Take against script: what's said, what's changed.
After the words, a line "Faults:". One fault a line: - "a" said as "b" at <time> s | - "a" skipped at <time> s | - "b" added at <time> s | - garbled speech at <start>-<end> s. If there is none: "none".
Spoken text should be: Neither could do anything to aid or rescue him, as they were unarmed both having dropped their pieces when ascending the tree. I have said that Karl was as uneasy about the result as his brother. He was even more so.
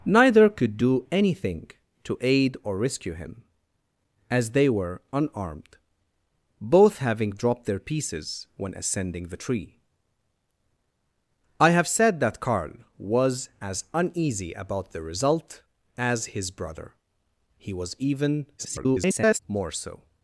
Neither could do anything to aid or rescue him, as they were unarmed both having dropped their pieces when ascending the tree. I have said that Karl was as uneasy about the result as his brother. He was even [garbled] more so.
Faults:
- garbled speech at 18.6-19.4 s